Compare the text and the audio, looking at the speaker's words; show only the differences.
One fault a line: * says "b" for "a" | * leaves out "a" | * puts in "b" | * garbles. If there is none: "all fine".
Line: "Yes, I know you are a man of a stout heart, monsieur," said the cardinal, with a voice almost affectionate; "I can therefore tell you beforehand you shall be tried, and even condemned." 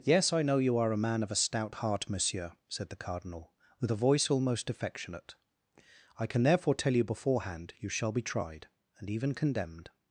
all fine